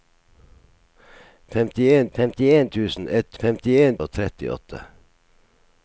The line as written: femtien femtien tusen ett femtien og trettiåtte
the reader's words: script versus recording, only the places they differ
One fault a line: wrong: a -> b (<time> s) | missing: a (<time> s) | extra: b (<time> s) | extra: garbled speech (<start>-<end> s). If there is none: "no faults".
no faults